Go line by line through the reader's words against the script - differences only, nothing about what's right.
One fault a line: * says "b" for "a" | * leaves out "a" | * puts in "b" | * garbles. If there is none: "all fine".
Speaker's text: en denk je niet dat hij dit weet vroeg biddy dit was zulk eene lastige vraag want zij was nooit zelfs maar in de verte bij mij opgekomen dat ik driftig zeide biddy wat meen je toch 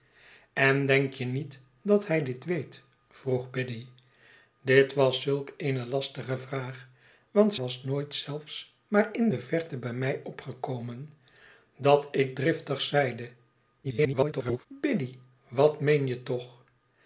* leaves out "zij"
* garbles